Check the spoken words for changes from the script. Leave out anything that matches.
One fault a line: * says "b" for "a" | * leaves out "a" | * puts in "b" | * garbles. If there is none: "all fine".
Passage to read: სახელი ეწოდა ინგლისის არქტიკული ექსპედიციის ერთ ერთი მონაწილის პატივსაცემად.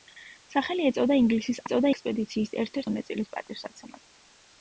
* says "ეწოდა" for "არქტიკული"
* leaves out "ერთი"